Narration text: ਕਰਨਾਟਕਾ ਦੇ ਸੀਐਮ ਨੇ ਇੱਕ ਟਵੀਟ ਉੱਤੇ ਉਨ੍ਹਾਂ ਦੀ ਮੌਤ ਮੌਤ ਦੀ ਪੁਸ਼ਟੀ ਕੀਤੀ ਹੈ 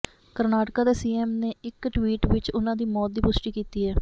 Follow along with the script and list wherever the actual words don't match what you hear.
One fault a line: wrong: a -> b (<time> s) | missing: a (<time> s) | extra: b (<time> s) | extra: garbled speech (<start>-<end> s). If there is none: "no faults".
wrong: ਉੱਤੇ -> ਵਿੱਚ (2.3 s)
missing: ਮੌਤ (3.1 s)